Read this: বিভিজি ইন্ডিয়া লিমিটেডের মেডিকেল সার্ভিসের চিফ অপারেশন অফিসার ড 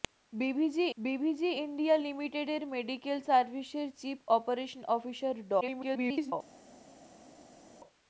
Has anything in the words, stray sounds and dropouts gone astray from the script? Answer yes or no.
yes